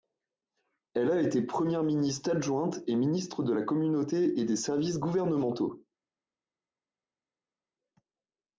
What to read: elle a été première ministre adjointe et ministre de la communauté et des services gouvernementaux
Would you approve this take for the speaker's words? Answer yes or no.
yes